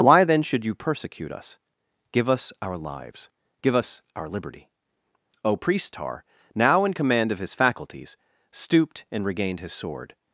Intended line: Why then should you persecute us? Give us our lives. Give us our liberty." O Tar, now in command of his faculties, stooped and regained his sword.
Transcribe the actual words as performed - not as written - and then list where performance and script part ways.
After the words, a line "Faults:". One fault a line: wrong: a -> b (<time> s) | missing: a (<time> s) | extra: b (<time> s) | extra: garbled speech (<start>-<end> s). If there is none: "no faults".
Why then should you persecute us? Give us our lives. Give us our liberty." O priest Tar, now in command of his faculties, stooped and regained his sword.
Faults:
extra: priest (5.6 s)